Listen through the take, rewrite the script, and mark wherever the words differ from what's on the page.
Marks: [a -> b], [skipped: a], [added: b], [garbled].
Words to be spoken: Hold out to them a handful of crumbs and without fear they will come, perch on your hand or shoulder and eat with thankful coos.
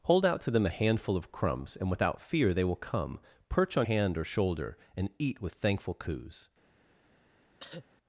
Hold out to them a handful of crumbs and without fear they will come, perch on [skipped: your] hand or shoulder and eat with thankful coos.